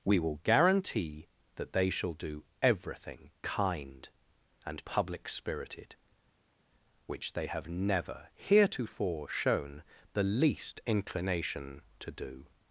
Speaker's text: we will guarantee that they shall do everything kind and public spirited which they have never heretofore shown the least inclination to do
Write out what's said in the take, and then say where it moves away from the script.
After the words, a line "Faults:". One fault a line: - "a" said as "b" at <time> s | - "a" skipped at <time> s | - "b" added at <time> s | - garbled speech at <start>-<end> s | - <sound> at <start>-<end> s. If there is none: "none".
we will guarantee that they shall do everything kind and public spirited which they have never heretofore shown the least inclination to do
Faults:
none